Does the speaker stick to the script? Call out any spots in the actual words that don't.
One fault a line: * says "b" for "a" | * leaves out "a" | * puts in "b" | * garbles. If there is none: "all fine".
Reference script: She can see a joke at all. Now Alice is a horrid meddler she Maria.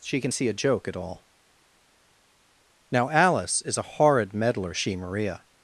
all fine